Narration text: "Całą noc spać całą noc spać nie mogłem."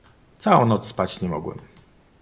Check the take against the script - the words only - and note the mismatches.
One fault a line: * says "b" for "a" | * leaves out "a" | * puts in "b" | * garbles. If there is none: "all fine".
* leaves out "całą noc spać"